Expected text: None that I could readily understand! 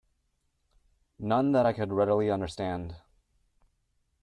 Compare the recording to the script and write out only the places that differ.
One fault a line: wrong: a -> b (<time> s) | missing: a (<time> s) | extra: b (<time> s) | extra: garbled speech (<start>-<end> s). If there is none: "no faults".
no faults